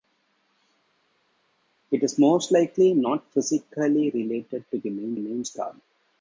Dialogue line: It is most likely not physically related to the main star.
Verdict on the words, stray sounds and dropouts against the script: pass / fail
fail